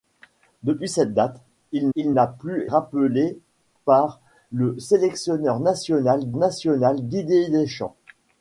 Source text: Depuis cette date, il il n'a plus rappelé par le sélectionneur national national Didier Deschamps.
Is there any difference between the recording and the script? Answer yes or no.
no